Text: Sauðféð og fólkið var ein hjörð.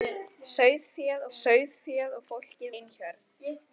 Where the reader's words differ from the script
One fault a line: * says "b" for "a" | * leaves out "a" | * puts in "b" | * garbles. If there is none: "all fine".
* puts in "sauðféð"
* leaves out "var"